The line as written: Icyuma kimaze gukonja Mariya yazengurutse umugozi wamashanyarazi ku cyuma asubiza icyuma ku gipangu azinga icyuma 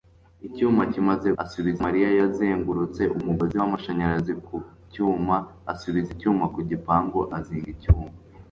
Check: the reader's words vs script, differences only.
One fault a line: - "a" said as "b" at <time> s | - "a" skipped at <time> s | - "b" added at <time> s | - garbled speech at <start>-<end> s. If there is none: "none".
- "gukonja" said as "asubiza" at 1.4 s